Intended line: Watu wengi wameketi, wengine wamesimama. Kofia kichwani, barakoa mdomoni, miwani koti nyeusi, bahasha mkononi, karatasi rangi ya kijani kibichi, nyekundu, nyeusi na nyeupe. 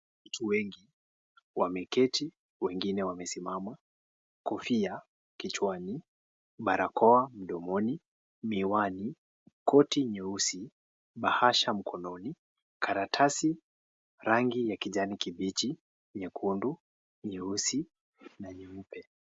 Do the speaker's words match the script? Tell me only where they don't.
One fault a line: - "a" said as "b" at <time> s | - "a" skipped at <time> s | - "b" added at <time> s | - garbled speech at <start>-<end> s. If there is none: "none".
none